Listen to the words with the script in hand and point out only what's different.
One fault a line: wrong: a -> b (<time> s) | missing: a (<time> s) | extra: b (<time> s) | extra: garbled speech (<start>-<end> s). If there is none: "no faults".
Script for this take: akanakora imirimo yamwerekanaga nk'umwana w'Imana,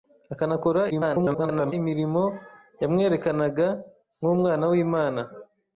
extra: garbled speech (0.9-1.7 s)